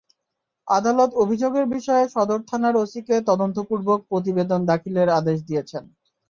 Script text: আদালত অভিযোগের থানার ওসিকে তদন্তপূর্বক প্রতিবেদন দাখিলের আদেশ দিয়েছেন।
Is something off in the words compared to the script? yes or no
yes